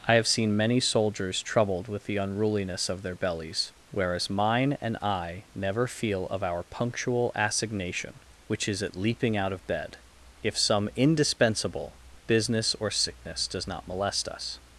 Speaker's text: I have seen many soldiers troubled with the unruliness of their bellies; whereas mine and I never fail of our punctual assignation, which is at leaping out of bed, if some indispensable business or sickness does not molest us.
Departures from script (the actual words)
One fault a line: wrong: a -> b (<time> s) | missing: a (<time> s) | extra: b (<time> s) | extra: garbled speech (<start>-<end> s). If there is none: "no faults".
wrong: fail -> feel (5.9 s)